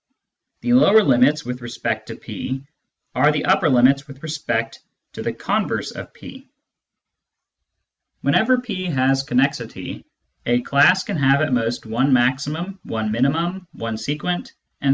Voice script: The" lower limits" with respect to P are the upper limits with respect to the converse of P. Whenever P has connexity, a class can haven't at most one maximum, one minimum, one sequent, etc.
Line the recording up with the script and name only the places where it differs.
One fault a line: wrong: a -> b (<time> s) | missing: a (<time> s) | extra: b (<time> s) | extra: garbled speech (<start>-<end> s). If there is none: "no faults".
wrong: haven't -> have (11.2 s)